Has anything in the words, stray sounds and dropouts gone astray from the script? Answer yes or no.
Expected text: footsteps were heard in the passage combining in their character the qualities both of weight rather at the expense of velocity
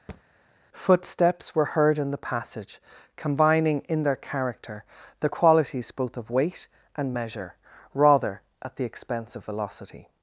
yes